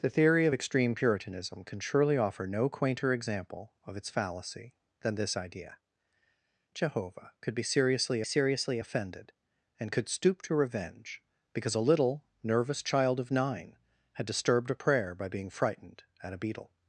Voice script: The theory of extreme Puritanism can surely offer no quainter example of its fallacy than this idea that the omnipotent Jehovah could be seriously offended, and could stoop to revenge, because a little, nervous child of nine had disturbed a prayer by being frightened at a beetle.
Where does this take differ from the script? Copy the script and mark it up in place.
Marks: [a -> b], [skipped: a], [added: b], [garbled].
The theory of extreme Puritanism can surely offer no quainter example of its fallacy than this idea [skipped: that the omnipotent] Jehovah could be seriously [added: seriously] offended, and could stoop to revenge, because a little, nervous child of nine had disturbed a prayer by being frightened at a beetle.